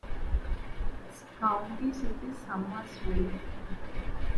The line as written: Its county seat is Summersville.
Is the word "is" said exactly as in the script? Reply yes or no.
yes